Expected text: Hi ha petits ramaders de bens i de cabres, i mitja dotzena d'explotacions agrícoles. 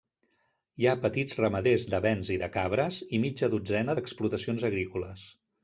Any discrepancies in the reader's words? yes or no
no